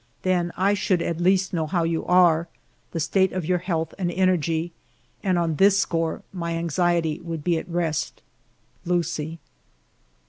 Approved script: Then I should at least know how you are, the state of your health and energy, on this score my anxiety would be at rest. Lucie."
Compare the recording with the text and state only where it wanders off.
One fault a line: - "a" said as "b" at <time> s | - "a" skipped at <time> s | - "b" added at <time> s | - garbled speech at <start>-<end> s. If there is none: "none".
- "and" added at 5.2 s